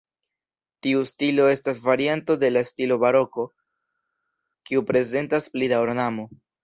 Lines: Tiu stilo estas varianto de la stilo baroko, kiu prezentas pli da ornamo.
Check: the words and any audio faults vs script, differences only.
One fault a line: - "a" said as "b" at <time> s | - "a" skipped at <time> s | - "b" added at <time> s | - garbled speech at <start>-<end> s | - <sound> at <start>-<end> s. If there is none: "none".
none